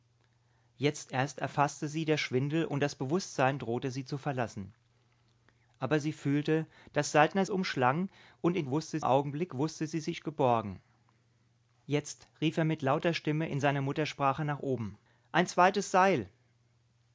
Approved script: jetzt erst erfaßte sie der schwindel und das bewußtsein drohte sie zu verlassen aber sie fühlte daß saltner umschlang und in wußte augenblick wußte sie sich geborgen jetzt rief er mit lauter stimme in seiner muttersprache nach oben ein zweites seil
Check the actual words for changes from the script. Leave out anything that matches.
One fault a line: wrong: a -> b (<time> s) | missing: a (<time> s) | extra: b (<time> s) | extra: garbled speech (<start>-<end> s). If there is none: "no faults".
no faults